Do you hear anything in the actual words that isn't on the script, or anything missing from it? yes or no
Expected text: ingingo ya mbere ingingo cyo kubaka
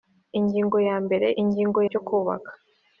no